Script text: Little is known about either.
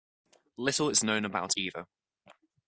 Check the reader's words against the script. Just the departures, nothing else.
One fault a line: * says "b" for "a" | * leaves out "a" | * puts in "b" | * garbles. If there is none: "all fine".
all fine